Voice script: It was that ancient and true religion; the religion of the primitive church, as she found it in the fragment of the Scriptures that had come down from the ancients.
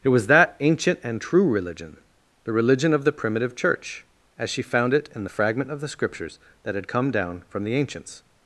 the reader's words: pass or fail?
pass